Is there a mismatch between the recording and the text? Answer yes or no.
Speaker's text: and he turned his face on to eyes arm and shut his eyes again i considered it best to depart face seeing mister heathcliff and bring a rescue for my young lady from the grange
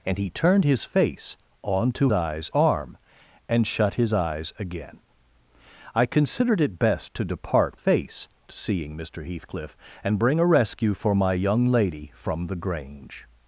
no